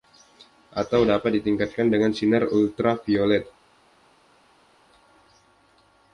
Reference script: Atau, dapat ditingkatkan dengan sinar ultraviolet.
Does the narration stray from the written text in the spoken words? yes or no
no